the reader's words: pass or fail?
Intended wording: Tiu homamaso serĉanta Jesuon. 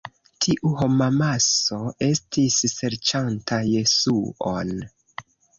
fail